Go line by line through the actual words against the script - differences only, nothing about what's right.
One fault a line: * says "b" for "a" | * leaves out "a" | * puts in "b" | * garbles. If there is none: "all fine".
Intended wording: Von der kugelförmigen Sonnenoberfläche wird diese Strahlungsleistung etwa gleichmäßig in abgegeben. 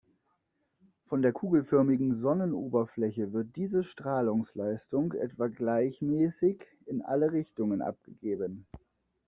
* puts in "alle Richtungen"